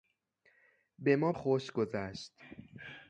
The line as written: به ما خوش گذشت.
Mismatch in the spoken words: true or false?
false